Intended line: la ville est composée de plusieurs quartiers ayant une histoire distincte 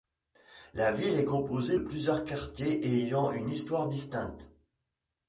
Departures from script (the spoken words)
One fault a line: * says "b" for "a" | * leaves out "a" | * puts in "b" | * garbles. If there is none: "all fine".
* leaves out "de"